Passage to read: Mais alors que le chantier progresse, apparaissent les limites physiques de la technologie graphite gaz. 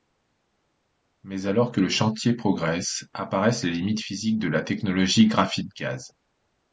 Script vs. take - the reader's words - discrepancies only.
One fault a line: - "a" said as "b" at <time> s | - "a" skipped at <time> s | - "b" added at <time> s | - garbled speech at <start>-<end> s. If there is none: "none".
none